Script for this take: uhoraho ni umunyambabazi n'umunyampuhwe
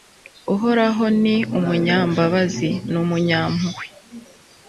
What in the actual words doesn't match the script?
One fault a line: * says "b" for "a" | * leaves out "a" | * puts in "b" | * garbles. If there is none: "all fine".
all fine